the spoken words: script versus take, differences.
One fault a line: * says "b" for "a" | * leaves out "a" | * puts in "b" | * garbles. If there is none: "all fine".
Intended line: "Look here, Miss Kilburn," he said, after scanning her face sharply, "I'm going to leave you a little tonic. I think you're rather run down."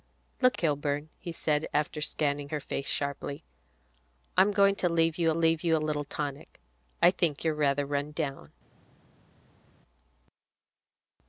* leaves out "here Miss"
* puts in "leave you"